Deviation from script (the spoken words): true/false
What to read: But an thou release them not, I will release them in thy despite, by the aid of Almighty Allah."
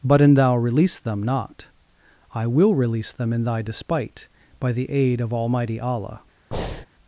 false